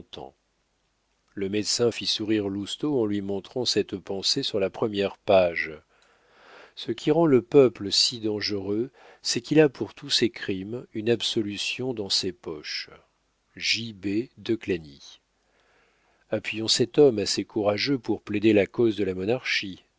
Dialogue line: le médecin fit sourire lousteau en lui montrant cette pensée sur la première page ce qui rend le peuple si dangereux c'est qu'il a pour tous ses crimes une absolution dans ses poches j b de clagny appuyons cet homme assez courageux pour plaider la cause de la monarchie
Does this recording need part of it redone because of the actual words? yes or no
no